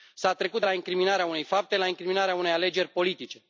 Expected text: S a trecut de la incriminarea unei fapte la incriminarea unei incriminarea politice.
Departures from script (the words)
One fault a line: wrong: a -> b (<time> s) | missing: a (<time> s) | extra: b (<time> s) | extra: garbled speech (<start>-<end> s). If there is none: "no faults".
wrong: incriminarea -> alegeri (2.5 s)